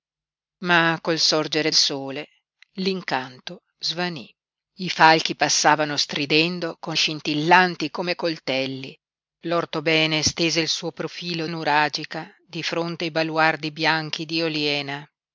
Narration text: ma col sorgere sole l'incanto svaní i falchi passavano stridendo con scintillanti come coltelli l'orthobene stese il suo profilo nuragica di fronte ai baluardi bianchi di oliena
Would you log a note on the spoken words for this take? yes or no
no